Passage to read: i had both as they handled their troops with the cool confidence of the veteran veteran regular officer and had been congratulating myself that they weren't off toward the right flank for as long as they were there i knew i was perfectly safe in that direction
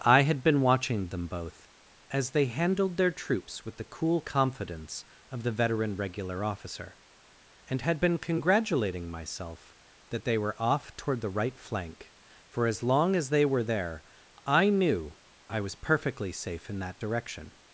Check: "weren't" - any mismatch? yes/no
yes